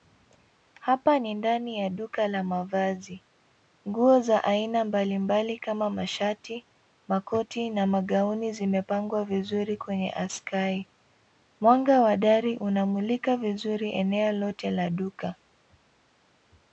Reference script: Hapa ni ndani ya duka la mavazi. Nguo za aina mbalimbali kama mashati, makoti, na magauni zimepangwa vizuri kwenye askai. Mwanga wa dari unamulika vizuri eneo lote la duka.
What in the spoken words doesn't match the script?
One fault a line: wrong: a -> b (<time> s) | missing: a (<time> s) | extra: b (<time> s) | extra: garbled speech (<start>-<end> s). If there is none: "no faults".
no faults